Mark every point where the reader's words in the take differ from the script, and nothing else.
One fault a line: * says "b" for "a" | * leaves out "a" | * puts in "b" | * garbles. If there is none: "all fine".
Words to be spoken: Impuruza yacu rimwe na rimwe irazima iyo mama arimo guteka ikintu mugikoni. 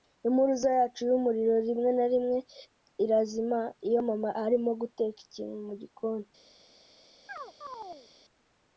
* puts in "yumuriro"